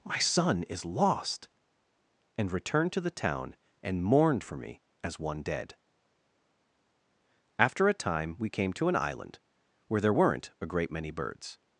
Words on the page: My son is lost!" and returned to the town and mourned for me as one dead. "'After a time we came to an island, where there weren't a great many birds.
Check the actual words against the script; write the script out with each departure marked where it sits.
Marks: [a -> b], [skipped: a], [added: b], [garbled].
My son is lost!" and returned to the town and mourned for me as one dead. "'After a time we came to an island, where there weren't a great many birds.